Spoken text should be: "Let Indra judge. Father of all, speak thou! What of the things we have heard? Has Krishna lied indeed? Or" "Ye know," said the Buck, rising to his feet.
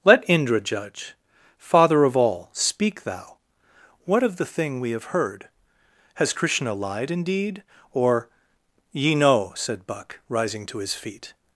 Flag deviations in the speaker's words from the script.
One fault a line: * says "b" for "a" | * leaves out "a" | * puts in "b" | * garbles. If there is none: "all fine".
* says "thing" for "things"
* leaves out "the"